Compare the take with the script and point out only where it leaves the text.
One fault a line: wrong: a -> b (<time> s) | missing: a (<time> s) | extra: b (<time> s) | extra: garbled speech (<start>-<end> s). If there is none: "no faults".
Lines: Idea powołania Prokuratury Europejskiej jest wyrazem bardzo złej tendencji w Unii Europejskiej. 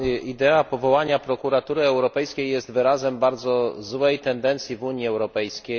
no faults